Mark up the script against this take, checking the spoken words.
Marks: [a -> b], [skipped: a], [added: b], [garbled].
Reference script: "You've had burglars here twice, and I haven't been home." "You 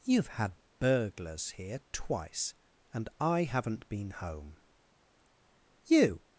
"You've had burglars here twice, and I haven't been home." "You